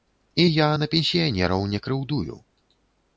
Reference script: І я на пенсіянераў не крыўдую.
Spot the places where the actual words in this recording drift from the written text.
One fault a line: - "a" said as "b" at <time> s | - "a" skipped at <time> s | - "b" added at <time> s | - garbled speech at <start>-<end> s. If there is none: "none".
none